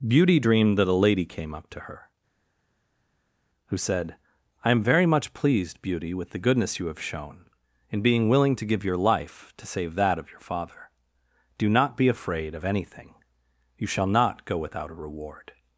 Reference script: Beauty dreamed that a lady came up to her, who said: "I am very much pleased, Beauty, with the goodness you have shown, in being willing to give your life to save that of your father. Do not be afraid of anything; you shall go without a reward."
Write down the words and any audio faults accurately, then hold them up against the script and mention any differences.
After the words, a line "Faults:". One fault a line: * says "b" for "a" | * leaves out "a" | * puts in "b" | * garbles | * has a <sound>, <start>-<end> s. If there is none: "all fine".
Beauty dreamed that a lady came up to her, who said: "I am very much pleased, Beauty, with the goodness you have shown, in being willing to give your life to save that of your father. Do not be afraid of anything; you shall not go without a reward."
Faults:
* puts in "not"